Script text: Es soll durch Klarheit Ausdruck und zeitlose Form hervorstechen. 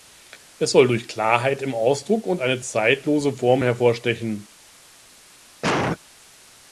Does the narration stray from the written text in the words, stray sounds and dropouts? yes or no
yes